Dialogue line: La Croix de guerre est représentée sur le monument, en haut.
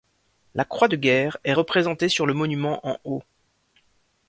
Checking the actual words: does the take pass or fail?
pass